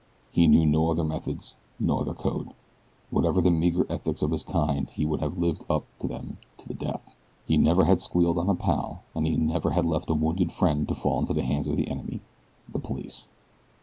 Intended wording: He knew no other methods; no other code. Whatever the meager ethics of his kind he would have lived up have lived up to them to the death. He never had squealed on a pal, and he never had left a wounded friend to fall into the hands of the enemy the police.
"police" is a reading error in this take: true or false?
false